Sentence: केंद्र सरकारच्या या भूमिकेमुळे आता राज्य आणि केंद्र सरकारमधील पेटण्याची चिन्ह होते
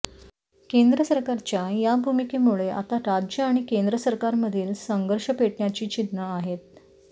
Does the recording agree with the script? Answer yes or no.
no